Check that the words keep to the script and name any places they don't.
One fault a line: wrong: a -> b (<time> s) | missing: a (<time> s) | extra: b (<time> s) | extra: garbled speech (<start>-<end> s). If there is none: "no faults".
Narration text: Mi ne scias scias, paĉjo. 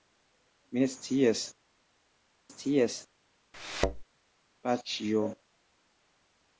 no faults